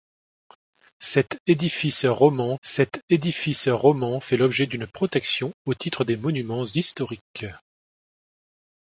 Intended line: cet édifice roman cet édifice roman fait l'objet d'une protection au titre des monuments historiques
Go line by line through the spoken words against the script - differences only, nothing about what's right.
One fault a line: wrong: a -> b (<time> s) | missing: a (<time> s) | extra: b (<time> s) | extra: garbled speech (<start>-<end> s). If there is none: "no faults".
no faults